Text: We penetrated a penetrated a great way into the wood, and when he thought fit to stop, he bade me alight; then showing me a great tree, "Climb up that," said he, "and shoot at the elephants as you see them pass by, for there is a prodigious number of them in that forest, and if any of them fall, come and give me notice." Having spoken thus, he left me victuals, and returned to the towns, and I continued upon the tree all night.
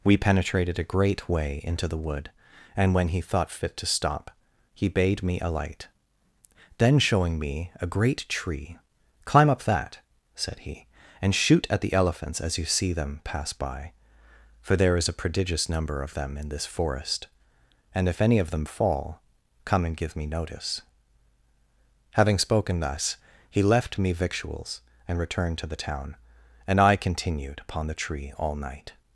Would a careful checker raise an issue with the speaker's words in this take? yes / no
yes